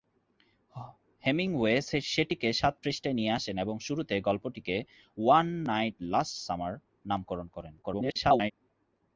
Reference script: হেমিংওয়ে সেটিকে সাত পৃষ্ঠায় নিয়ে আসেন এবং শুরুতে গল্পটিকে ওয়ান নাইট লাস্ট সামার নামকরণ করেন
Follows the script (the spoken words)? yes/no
no